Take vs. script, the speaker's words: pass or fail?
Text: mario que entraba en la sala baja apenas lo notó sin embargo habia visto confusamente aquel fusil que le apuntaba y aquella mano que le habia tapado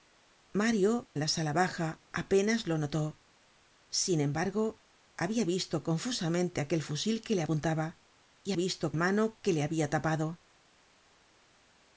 fail